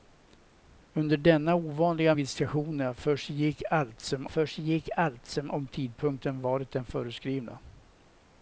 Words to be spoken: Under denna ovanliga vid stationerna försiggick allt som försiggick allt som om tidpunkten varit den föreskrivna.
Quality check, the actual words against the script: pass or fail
pass